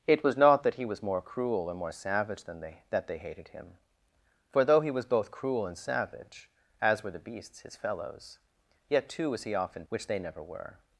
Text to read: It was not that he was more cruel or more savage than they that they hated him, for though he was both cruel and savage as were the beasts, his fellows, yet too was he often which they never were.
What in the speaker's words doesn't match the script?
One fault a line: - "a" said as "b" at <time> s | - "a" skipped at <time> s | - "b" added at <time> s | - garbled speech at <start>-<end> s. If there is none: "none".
none